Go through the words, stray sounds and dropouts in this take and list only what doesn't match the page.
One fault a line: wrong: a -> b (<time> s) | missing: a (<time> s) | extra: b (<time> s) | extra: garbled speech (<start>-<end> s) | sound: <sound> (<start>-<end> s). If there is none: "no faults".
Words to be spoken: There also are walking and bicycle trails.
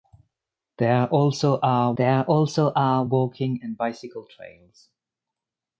extra: there also are (2.0 s)